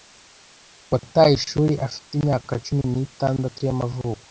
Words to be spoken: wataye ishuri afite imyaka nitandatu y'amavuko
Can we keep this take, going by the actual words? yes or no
no